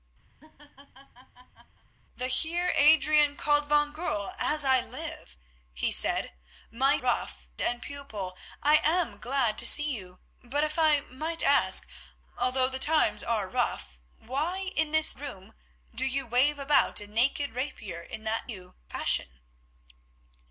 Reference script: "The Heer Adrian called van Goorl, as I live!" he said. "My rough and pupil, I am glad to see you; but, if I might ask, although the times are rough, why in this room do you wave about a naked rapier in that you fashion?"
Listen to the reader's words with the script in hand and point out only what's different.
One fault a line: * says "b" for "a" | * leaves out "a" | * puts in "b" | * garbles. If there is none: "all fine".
all fine